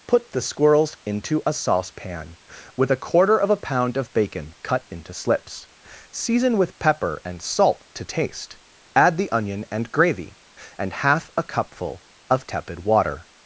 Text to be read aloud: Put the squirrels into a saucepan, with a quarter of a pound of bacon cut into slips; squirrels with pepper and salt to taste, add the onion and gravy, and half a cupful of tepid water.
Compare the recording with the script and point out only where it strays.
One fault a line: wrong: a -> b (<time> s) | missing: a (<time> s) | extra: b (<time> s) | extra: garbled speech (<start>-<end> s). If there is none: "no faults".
wrong: squirrels -> season (6.1 s)